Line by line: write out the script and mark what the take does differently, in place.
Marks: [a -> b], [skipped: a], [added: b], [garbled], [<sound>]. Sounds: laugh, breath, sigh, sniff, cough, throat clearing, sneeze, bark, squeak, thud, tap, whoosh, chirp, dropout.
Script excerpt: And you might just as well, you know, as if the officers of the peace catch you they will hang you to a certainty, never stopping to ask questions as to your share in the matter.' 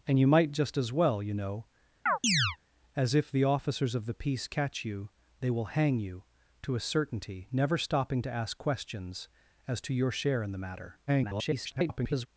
And you might just as well, you know, [chirp] as if the officers of the peace catch you they will hang you to a certainty, never stopping to ask questions as to your share in the matter.' [garbled]